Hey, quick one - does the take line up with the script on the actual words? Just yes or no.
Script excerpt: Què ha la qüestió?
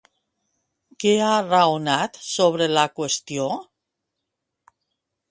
no